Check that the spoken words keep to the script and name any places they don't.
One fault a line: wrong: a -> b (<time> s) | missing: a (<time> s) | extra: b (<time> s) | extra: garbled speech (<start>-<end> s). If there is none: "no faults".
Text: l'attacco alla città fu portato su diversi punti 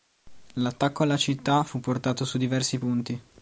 no faults